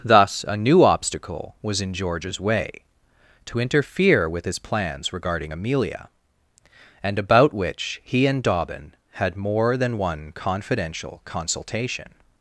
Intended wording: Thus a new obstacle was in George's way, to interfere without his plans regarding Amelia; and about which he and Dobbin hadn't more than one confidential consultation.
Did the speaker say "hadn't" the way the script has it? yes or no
no